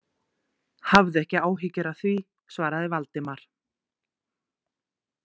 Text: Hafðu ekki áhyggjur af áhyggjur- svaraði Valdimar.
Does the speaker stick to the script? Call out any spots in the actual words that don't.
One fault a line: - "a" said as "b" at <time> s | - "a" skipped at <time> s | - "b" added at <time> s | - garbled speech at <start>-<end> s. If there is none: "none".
- "áhyggjur" said as "því" at 2.0 s